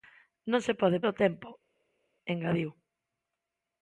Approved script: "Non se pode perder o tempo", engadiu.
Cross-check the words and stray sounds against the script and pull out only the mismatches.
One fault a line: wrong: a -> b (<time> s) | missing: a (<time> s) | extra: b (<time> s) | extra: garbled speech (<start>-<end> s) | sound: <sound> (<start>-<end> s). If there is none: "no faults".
missing: perder (1.0 s)